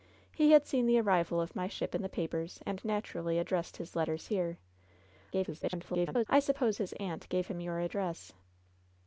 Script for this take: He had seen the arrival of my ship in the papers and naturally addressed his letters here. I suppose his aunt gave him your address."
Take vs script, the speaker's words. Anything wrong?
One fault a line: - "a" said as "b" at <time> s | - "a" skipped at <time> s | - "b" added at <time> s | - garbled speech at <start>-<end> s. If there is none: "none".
- garbled speech at 5.3-6.3 s